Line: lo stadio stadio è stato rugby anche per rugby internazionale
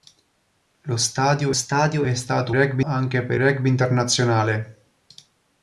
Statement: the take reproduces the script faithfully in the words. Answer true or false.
true